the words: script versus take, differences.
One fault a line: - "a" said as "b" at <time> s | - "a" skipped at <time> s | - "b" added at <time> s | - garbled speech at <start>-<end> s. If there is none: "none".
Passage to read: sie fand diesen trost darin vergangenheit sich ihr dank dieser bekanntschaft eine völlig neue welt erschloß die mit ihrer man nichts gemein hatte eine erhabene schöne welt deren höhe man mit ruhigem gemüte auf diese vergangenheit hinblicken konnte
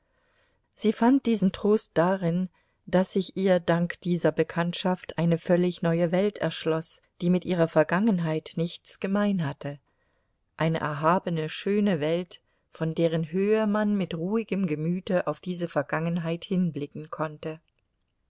- "vergangenheit" said as "daß" at 2.9 s
- "man" said as "vergangenheit" at 7.7 s
- "von" added at 12.7 s